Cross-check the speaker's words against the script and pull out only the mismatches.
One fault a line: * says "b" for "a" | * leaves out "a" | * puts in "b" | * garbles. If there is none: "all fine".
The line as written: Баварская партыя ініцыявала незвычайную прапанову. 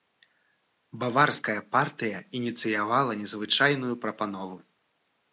all fine